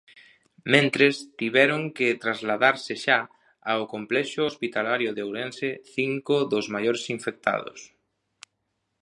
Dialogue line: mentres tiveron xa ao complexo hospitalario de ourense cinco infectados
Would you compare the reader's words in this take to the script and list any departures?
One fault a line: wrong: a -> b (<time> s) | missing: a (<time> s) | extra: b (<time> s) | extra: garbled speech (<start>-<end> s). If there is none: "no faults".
extra: que trasladarse (2.0 s)
extra: dos maiores (6.5 s)